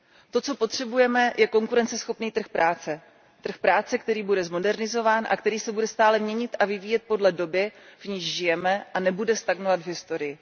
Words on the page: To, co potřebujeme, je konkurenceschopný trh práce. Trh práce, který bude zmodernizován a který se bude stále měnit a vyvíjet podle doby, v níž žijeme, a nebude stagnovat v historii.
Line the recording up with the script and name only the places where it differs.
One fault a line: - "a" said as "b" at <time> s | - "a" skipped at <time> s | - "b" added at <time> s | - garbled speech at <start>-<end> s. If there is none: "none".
none